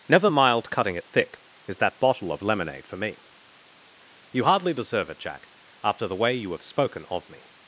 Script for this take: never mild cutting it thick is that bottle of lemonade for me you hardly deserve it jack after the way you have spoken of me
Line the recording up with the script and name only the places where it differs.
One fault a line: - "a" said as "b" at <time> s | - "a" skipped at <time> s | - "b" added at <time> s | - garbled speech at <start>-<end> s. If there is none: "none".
none